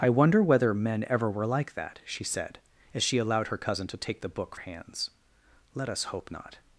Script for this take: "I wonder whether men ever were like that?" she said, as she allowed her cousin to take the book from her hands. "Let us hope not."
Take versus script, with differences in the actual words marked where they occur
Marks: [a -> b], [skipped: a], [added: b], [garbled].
"I wonder whether men ever were like that?" she said, as she allowed her cousin to take the book [skipped: from her] hands. "Let us hope not."